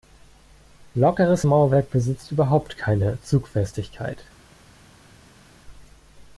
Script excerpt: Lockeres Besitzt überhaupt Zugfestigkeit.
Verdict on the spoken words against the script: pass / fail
fail